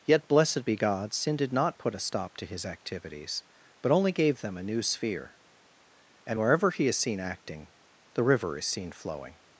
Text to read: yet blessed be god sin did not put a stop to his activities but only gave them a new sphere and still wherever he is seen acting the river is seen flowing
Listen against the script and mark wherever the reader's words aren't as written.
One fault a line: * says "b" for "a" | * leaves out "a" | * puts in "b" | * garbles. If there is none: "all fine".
* leaves out "still"